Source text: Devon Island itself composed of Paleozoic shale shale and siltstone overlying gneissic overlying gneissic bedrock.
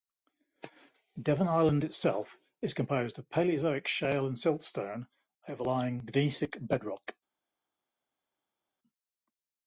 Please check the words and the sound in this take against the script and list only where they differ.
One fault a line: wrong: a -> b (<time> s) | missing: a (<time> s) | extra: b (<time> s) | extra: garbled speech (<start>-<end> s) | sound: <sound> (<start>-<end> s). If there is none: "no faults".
extra: is (2.6 s)
missing: shale (4.2 s)
missing: overlying gneissic (6.6 s)